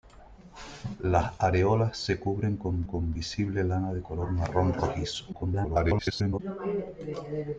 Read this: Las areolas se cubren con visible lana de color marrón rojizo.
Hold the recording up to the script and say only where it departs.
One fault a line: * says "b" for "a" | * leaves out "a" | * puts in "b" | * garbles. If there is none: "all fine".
* puts in "con"
* garbles